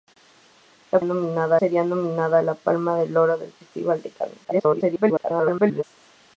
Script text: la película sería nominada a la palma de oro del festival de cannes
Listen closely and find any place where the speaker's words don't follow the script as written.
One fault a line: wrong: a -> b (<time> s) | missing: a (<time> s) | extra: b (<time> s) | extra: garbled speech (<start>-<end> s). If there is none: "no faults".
wrong: película -> nominada (1.0 s)
extra: garbled speech (4.4-5.8 s)